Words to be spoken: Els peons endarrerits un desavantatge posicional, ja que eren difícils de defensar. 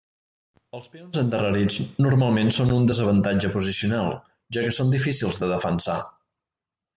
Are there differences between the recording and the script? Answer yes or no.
yes